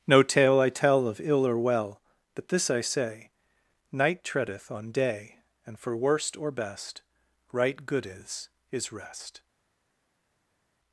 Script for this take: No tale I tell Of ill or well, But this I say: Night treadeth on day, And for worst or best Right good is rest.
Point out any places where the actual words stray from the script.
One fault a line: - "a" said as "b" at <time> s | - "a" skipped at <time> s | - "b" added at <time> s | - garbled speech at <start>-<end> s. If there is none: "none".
- "is" added at 8.7 s